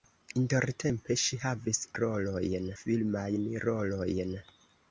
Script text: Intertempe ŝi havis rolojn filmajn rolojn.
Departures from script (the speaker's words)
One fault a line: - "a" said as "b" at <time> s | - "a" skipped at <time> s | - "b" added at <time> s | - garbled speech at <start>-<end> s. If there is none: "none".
none